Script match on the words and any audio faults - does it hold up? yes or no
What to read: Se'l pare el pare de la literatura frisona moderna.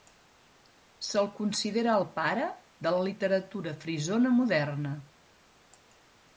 no